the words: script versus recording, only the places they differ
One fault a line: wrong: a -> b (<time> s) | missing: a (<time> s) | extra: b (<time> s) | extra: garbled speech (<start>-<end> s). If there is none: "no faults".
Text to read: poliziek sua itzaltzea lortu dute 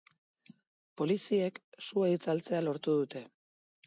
no faults